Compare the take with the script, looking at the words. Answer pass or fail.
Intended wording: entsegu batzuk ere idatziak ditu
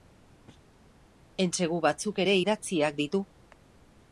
pass